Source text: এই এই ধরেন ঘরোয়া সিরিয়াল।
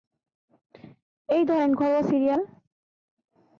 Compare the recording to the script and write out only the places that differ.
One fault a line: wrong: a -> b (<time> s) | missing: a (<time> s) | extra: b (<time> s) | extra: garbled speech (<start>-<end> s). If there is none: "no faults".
missing: এই (1.4 s)